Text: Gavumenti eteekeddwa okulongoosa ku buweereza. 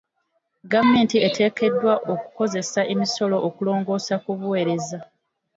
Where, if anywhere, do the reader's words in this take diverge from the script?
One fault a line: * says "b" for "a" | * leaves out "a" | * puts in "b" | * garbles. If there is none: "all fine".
* puts in "okukozesa emisolo"